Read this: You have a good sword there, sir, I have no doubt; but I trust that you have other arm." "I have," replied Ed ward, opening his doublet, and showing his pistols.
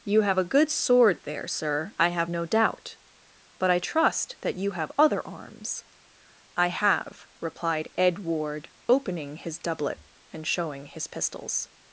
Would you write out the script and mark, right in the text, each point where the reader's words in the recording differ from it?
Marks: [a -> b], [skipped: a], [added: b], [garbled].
You have a good sword there, sir, I have no doubt; but I trust that you have other [arm." -> arms] "I have," replied Ed ward, opening his doublet, and showing his pistols.